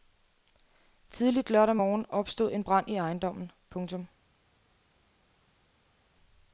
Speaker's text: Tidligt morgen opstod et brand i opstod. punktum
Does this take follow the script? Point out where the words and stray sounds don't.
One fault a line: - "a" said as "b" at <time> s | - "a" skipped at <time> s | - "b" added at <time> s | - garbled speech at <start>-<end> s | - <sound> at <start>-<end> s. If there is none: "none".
- "lørdag" added at 1.5 s
- "et" said as "en" at 2.5 s
- "opstod" said as "ejendommen" at 3.0 s